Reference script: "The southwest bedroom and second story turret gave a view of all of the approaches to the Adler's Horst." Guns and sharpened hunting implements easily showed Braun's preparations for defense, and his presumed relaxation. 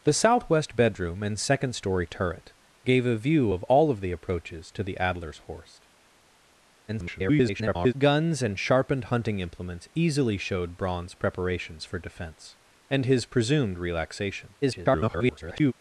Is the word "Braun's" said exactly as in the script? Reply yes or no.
yes